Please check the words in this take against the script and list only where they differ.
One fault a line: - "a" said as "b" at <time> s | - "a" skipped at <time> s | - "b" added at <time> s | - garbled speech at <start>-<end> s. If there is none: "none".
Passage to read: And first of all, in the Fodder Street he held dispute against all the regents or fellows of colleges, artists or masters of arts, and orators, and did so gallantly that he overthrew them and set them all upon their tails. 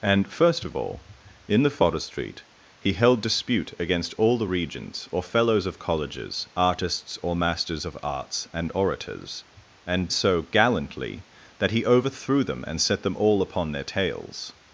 - "did" skipped at 10.1 s